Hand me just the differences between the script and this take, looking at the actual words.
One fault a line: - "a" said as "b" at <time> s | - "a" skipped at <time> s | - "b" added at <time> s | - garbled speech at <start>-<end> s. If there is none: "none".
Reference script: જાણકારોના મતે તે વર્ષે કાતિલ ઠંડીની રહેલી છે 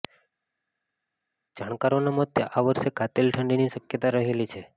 - "તે" said as "આ" at 2.5 s
- "શક્યતા" added at 3.7 s